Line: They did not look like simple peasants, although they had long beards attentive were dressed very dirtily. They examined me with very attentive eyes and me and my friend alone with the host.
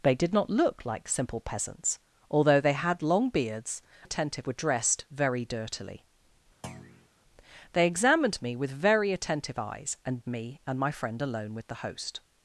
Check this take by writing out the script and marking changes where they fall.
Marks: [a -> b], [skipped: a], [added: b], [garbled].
They did not look like simple peasants, although they had long beards attentive were dressed very dirtily. They examined me with very attentive eyes and me and my friend alone with the host.